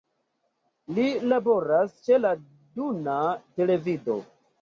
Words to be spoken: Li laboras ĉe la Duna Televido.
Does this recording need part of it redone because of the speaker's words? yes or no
no